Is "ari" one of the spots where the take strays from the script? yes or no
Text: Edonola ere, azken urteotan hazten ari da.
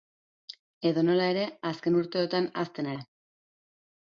yes